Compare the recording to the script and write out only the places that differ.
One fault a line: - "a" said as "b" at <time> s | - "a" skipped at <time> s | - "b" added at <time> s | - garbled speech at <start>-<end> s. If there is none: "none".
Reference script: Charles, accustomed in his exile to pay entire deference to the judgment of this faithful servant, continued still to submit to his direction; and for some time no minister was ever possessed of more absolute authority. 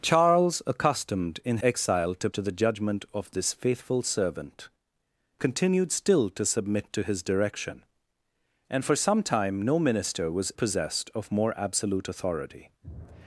- "his" skipped at 1.6 s
- "pay entire deference" skipped at 2.3 s
- "ever" skipped at 10.5 s